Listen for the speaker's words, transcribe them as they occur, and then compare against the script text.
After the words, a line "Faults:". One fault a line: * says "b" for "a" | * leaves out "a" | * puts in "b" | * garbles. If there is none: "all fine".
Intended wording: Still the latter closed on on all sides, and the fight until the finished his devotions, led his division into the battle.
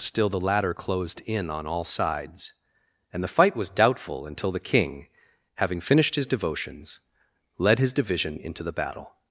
Still the latter closed in on all sides, and the fight was doubtful until the king, having finished his devotions, led his division into the battle.
Faults:
* says "in" for "on"
* puts in "was doubtful"
* puts in "king having"